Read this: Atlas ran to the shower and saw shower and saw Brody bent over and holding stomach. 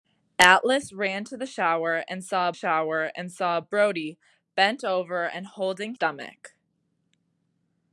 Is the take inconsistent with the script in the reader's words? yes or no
no